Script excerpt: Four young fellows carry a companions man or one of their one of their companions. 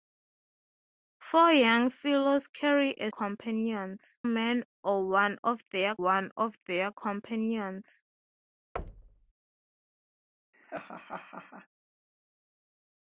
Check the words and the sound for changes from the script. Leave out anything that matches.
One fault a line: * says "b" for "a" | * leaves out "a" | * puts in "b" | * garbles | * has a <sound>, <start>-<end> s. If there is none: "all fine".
* has a thud, 8.8-9.3 s
* has a laugh, 10.5-11.7 s